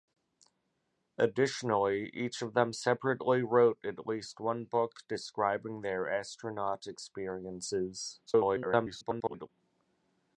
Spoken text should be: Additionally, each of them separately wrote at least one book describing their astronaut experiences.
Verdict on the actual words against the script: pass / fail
fail